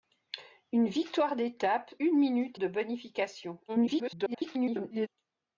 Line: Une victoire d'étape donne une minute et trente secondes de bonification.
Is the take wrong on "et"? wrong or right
wrong